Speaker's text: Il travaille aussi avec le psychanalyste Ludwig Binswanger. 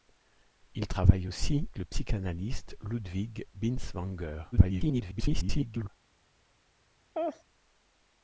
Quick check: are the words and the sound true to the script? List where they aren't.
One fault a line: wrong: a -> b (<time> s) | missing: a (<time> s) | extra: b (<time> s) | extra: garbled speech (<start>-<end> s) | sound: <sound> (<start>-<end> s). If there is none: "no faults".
missing: avec (1.7 s)
extra: garbled speech (4.5-5.9 s)
sound: laugh (7.1-7.4 s)